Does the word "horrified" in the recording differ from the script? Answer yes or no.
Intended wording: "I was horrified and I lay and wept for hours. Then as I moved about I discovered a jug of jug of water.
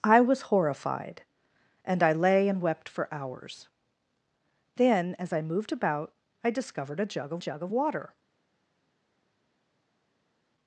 no